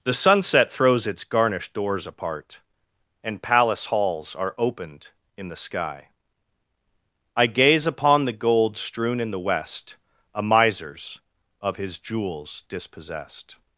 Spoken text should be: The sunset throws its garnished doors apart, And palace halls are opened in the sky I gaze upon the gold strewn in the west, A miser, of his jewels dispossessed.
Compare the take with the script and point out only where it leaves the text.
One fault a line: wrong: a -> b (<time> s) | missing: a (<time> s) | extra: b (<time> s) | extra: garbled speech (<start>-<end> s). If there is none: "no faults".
wrong: miser -> misers (10.4 s)